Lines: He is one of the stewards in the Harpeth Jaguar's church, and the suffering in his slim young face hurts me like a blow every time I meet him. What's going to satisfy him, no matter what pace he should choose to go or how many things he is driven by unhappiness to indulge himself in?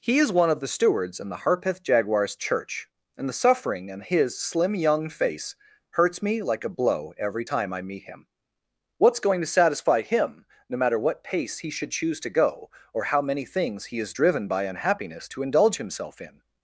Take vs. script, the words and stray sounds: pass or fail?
pass